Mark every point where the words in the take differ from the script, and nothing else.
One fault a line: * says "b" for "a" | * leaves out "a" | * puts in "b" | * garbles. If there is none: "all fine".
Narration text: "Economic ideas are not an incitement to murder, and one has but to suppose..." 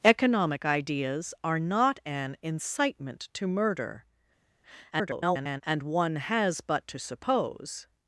* garbles